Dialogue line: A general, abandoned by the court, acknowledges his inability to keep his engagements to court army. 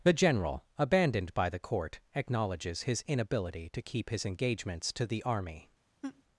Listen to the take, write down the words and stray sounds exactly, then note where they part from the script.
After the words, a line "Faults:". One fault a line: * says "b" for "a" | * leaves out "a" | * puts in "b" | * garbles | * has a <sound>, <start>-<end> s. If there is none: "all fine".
The general, abandoned by the court, acknowledges his inability to keep his engagements to the army.
Faults:
* says "The" for "A"
* says "the" for "court"
* has a laugh, 6.0-6.2 s